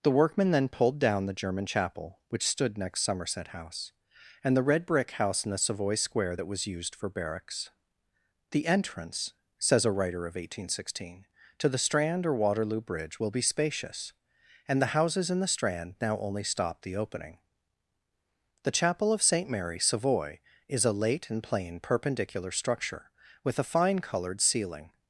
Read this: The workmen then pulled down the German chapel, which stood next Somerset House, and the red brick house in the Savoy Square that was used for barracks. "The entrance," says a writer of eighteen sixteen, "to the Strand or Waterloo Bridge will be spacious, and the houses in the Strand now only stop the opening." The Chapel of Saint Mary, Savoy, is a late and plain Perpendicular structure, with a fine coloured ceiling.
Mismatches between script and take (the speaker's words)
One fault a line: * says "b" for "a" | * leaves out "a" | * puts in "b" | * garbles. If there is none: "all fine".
all fine